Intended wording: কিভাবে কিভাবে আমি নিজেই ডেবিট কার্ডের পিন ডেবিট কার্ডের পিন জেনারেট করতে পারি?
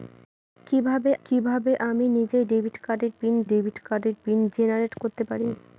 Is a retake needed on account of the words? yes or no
no